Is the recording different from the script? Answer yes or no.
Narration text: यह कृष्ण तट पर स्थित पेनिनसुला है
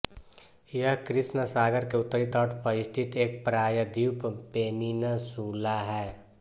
yes